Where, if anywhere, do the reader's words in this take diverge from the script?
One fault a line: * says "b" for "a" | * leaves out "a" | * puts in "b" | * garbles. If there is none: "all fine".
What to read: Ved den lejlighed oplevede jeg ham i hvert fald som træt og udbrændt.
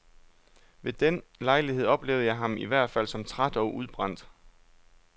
all fine